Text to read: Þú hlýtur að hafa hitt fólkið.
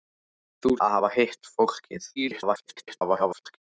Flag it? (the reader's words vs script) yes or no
yes